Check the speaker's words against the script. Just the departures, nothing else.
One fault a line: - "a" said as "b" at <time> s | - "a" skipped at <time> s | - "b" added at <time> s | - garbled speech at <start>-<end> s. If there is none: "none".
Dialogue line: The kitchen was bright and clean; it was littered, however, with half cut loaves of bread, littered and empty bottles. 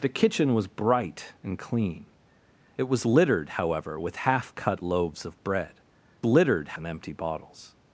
none